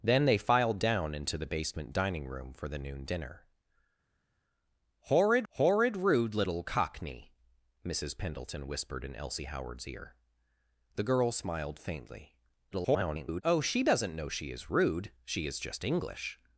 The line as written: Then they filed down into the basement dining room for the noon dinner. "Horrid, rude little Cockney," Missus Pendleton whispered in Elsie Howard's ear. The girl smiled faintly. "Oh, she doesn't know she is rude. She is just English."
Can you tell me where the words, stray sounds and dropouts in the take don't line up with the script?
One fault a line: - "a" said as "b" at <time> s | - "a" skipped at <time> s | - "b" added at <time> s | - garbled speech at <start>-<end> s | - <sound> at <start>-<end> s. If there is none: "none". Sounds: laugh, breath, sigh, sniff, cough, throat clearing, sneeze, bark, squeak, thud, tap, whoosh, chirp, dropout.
- "horrid" added at 5.5 s
- garbled speech at 12.7-13.4 s